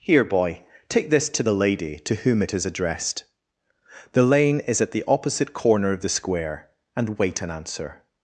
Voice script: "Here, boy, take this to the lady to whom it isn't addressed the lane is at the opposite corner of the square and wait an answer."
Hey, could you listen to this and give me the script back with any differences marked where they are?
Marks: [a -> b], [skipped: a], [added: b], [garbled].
"Here, boy, take this to the lady to whom it [isn't -> is] addressed the lane is at the opposite corner of the square and wait an answer."